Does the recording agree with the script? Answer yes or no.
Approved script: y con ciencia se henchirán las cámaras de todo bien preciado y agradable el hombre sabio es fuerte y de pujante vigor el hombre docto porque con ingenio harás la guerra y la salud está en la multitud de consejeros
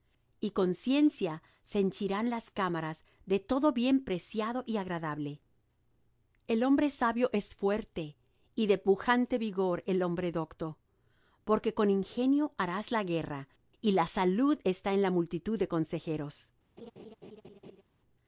yes